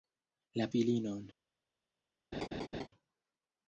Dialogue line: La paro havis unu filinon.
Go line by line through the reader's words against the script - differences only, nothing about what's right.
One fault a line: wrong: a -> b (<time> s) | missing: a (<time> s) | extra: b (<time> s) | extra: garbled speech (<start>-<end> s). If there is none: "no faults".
missing: paro havis unu (0.7 s)